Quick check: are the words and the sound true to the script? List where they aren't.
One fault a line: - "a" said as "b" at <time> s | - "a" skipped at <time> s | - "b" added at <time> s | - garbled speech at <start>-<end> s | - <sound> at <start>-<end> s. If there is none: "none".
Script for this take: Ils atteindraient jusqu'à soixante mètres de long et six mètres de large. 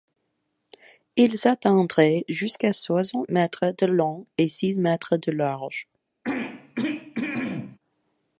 - throat clearing at 6.2-7.8 s